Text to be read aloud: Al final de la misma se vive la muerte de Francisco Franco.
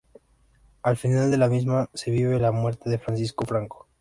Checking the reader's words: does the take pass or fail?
pass